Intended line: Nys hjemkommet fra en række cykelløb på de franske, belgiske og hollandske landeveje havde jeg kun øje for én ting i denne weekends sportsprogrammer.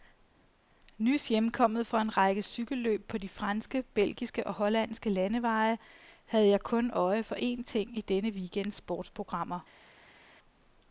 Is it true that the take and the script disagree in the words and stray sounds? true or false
false